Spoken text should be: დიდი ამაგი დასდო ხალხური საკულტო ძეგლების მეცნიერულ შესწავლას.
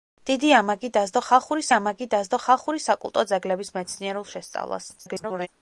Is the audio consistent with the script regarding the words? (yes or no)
no